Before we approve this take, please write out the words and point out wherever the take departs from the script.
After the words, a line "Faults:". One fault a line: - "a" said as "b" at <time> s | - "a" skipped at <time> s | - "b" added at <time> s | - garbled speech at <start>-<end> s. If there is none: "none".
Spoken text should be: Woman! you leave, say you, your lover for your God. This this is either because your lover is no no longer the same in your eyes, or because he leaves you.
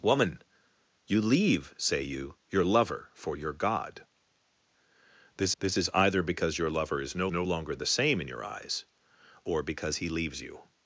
Woman! you leave, say you, your lover for your God. This this is either because your lover is no no longer the same in your eyes, or because he leaves you.
Faults:
none